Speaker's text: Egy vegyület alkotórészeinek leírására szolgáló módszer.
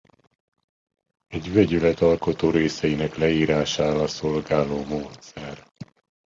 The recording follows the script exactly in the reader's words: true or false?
true